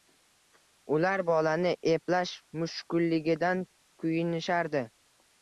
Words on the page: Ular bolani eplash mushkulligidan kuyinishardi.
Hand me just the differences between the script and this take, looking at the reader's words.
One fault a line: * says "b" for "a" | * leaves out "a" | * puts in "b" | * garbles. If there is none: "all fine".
all fine